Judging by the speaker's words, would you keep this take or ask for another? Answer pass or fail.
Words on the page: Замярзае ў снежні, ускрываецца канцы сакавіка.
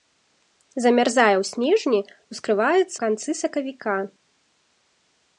pass